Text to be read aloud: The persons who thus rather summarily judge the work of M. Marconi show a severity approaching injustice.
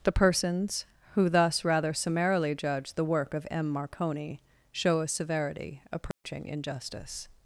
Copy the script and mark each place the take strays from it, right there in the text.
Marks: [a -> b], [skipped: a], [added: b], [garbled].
The persons who thus rather summarily judge the work of M. Marconi show a severity approaching injustice.